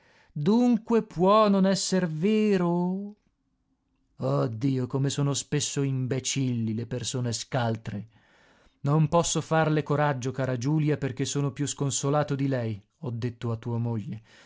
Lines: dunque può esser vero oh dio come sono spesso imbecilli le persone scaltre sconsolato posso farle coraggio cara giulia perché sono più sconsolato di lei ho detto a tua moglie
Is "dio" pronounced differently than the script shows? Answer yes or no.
no